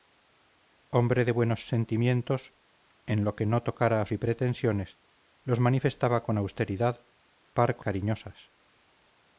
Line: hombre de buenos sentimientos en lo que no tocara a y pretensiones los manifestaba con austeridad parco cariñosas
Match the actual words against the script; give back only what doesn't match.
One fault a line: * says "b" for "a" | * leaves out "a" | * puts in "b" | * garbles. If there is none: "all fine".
all fine